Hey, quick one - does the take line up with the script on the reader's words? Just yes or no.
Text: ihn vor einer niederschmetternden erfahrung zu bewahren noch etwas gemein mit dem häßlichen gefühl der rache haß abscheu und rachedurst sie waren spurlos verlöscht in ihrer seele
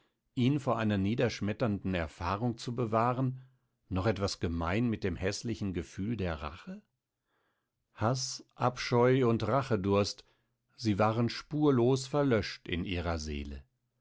yes